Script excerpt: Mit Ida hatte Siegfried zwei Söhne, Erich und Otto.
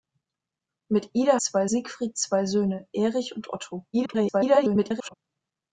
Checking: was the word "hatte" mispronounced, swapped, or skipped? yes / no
yes